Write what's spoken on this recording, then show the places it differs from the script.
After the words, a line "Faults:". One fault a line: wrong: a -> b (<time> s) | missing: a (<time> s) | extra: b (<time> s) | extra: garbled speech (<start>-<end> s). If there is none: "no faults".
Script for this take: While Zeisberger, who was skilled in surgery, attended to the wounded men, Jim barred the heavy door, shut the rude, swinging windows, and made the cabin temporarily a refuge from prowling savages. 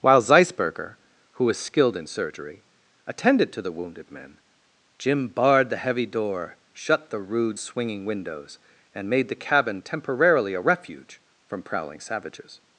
While Zeisberger, who was skilled in surgery, attended to the wounded men, Jim barred the heavy door, shut the rude, swinging windows, and made the cabin temporarily a refuge from prowling savages.
Faults:
no faults